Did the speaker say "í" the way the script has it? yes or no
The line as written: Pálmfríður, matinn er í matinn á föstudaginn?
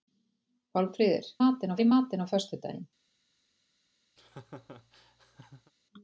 yes